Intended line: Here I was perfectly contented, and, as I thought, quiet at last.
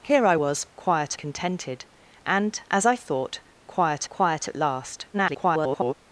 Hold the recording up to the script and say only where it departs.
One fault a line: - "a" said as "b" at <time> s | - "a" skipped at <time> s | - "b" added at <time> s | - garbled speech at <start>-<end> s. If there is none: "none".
- "perfectly" said as "quiet" at 0.8 s
- "quiet" added at 4.1 s
- garbled speech at 5.1-5.9 s